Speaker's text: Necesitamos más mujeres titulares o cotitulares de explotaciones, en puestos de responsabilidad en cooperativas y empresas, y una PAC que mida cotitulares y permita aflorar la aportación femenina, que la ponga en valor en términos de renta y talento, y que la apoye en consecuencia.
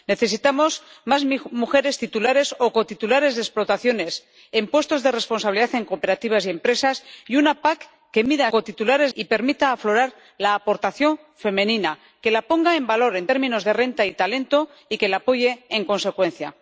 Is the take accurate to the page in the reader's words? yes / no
yes